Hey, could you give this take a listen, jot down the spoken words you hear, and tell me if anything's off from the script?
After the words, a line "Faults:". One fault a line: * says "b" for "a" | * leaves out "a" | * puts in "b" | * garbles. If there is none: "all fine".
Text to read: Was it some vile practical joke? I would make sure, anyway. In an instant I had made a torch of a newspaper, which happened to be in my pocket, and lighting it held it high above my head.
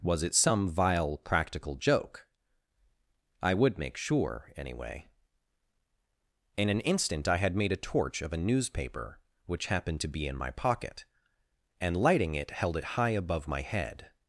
Was it some vile practical joke? I would make sure, anyway. In an instant I had made a torch of a newspaper, which happened to be in my pocket, and lighting it held it high above my head.
Faults:
all fine